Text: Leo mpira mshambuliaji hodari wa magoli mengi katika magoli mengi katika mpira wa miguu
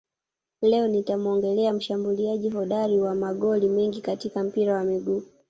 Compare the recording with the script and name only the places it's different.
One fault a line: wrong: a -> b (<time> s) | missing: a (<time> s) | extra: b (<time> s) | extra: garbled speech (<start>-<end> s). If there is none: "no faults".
wrong: mpira -> nitamuongelea (0.9 s)
missing: magoli mengi katika (4.4 s)